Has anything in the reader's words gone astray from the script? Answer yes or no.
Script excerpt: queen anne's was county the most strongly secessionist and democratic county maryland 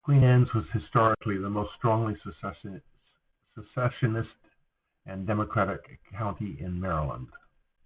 yes